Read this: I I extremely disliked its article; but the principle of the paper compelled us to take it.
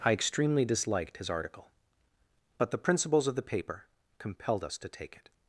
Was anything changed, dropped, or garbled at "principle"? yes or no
yes